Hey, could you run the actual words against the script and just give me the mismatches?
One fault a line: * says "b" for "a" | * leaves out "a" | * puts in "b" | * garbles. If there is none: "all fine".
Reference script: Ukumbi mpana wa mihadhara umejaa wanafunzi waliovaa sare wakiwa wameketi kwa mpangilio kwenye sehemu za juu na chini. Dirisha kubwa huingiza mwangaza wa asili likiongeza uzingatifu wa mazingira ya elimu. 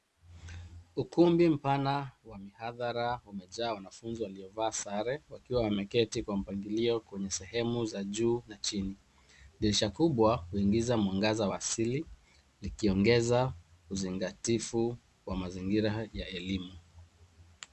all fine